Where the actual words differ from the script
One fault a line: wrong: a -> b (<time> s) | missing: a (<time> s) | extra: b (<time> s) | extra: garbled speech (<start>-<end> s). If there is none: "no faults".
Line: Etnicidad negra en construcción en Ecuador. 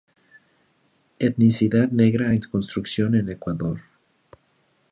no faults